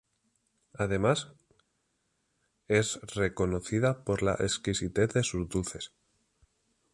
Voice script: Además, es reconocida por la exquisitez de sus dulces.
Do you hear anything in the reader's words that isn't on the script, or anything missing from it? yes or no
no